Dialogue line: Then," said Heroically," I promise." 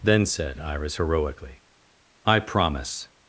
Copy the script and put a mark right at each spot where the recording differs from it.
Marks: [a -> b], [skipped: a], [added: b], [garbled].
Then," said [added: Iris] Heroically," I promise."